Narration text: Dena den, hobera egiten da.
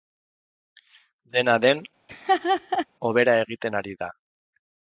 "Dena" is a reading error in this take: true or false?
false